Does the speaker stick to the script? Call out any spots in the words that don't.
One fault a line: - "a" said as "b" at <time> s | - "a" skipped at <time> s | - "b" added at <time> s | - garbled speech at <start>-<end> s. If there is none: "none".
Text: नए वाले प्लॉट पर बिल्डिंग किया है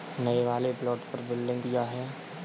none